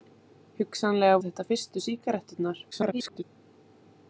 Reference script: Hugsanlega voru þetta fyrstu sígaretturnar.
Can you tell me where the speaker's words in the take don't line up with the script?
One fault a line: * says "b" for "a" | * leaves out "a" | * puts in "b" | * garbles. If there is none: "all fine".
* leaves out "voru"
* garbles